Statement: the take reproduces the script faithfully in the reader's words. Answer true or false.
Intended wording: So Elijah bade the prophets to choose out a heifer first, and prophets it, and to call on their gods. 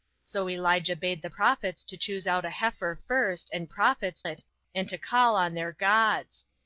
true